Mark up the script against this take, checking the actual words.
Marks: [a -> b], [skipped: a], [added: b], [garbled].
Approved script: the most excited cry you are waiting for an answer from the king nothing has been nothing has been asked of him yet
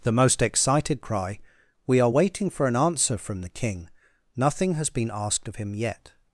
the most excited cry [you -> we] are waiting for an answer from the king nothing has been [skipped: nothing has been] asked of him yet